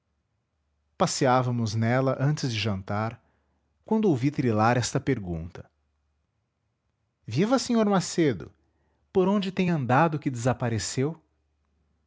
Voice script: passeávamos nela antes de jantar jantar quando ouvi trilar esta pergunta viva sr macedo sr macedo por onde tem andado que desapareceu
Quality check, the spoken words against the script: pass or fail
fail